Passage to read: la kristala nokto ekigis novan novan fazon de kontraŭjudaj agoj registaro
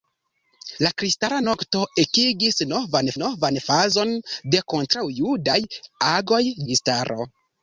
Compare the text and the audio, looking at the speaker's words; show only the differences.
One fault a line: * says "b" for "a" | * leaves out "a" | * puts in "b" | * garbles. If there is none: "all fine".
all fine